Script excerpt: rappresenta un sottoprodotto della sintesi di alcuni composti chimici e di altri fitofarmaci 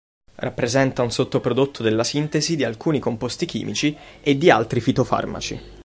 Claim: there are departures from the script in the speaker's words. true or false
false